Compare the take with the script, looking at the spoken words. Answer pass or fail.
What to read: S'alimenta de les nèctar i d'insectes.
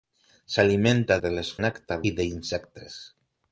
pass